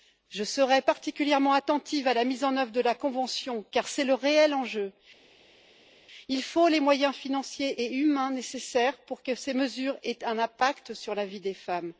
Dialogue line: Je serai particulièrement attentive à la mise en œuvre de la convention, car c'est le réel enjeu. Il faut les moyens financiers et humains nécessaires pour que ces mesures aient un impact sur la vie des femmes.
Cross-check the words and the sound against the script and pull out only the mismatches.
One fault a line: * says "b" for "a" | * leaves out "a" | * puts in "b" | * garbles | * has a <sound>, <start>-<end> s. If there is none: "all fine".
all fine